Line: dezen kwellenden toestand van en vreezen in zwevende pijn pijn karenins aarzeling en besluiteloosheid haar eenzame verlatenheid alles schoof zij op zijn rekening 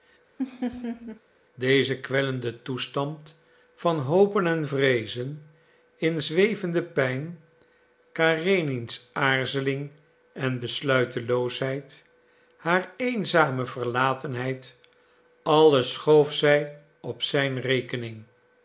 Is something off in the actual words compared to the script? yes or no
yes